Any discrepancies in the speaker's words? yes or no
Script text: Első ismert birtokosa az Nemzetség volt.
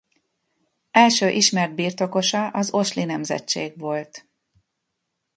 yes